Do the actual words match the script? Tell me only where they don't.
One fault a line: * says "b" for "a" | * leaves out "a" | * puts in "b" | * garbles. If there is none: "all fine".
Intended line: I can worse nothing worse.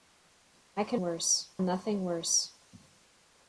all fine